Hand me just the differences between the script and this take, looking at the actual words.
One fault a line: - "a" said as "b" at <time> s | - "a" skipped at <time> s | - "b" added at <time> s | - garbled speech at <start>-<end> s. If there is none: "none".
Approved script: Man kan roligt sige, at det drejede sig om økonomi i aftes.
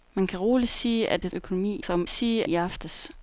- "drejede" said as "økonomi" at 1.3 s
- "økonomi" said as "sige" at 2.1 s